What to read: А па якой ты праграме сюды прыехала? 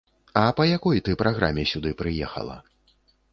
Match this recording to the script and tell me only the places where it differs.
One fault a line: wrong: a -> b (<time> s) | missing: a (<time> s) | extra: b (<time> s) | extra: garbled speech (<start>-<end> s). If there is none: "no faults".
no faults